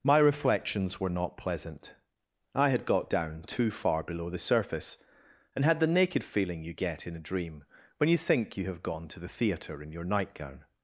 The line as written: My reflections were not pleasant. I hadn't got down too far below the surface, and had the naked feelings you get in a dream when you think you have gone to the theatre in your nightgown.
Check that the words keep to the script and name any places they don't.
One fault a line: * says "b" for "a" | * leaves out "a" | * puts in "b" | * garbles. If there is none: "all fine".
* says "had" for "hadn't"
* says "feeling" for "feelings"